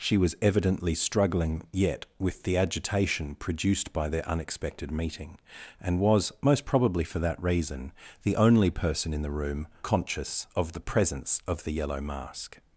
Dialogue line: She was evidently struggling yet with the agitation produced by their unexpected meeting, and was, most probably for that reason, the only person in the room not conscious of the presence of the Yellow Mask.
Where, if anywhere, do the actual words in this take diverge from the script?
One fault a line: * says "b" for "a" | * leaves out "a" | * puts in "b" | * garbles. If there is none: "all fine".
* leaves out "not"